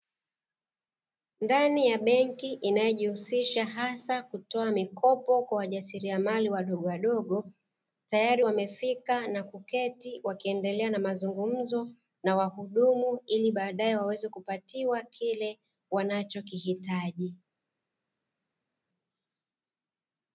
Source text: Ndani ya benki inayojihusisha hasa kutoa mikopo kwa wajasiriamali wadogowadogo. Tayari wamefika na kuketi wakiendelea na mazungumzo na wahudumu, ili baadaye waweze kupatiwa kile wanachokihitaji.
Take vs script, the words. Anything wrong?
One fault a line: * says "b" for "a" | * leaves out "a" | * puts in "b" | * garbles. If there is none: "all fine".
all fine